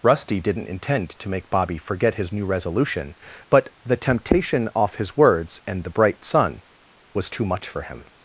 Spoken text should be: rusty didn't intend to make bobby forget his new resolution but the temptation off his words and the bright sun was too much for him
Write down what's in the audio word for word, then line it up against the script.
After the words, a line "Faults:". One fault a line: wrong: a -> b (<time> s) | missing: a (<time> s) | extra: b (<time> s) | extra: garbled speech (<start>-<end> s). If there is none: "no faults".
rusty didn't intend to make bobby forget his new resolution but the temptation off his words and the bright sun was too much for him
Faults:
no faults